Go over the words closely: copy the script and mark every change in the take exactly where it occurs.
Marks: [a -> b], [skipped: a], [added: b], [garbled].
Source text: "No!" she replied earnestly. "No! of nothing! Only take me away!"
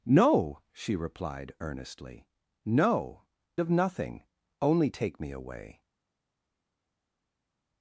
"No!" she replied earnestly. "No! of nothing! Only take me away!"